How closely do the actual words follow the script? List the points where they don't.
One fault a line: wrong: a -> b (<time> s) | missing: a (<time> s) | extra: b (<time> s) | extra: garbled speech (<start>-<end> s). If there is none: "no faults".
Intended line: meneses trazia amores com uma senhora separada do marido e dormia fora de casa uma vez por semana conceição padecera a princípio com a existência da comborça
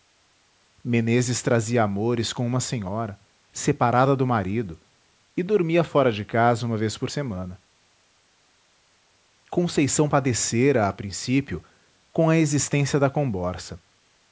no faults